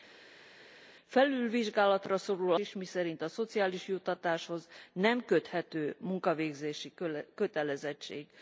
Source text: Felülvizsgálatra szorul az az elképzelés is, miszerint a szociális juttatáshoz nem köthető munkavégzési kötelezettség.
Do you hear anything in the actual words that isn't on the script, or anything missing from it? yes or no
yes